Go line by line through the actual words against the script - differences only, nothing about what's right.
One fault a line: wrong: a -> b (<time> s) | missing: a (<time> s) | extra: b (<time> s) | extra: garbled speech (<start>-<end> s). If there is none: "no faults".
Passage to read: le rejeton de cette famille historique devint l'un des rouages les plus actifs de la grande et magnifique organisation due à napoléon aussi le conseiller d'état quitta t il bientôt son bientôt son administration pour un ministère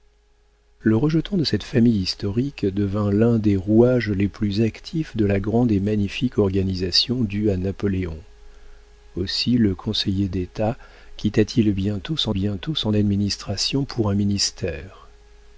no faults